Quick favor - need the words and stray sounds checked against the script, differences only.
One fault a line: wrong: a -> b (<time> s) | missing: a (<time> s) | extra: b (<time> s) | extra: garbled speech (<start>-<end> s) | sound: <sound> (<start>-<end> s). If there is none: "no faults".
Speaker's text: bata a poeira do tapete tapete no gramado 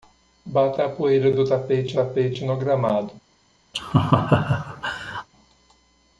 sound: laugh (3.7-5.3 s)